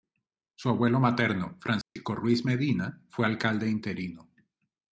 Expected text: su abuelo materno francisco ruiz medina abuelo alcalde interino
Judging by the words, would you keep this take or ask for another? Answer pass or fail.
fail